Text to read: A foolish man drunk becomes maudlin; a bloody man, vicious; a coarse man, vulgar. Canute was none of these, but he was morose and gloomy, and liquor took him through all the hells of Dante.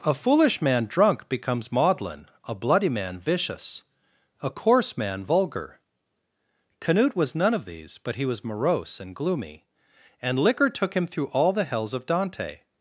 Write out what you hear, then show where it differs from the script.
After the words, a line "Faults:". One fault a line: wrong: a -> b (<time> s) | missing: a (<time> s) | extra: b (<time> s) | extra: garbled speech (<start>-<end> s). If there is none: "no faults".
A foolish man drunk becomes maudlin; a bloody man, vicious; a coarse man, vulgar. Canute was none of these, but he was morose and gloomy, and liquor took him through all the hells of Dante.
Faults:
no faults